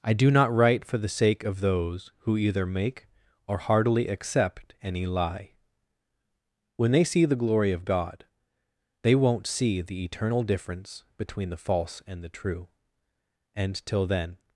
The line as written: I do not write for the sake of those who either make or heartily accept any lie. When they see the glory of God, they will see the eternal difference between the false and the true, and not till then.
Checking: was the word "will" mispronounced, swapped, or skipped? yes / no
yes